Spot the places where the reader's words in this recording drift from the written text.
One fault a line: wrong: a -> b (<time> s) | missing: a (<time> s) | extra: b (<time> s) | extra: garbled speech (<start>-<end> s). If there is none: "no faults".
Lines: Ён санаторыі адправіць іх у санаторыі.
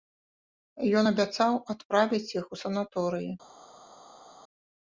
wrong: санаторыі -> абяцаў (1.1 s)